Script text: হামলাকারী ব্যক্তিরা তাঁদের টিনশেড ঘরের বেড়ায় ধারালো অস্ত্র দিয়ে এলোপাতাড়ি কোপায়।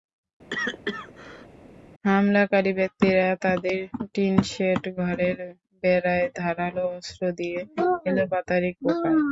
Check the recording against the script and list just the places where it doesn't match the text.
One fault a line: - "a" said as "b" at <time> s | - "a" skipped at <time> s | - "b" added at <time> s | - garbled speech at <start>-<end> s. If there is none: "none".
none